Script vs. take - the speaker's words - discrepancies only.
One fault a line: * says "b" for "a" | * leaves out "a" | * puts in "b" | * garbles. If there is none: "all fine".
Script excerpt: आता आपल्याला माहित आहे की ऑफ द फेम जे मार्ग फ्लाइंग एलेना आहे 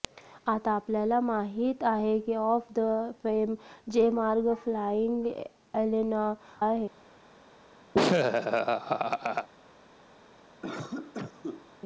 all fine